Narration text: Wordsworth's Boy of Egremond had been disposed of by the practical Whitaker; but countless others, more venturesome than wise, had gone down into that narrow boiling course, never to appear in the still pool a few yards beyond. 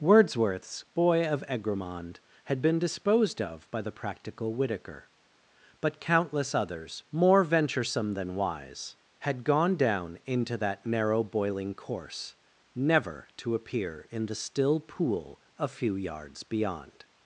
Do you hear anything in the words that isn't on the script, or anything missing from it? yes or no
no